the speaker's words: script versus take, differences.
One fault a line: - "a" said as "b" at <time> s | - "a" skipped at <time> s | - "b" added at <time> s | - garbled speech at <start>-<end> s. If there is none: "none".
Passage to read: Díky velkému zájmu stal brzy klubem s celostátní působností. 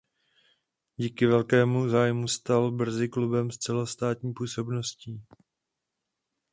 none